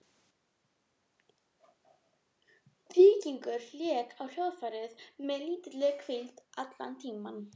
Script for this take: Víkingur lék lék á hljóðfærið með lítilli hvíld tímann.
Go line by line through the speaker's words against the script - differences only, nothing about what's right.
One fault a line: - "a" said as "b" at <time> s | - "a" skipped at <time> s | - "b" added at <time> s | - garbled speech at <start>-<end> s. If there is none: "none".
- "lék" skipped at 4.2 s
- "allan" added at 6.6 s